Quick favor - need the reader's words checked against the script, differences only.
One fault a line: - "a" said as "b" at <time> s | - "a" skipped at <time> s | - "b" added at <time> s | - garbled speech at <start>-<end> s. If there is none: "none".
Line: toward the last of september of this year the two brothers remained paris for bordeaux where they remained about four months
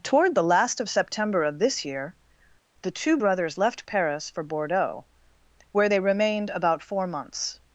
- "remained" said as "left" at 3.6 s